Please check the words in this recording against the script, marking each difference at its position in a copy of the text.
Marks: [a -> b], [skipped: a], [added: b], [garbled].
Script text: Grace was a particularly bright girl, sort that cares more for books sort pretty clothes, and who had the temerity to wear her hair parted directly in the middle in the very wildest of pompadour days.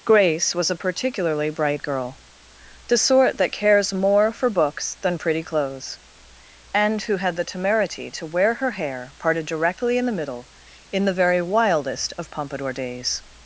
Grace was a particularly bright girl, [added: the] sort that cares more for books [sort -> than] pretty clothes, and who had the temerity to wear her hair parted directly in the middle in the very wildest of pompadour days.